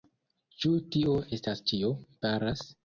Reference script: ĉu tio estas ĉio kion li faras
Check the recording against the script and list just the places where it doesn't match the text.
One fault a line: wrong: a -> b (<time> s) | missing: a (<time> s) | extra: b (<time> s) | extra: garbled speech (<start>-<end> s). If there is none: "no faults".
missing: kion li (1.9 s)